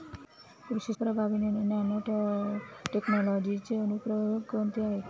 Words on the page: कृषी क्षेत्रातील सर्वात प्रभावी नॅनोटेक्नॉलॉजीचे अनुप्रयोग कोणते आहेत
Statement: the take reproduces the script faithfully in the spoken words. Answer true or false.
false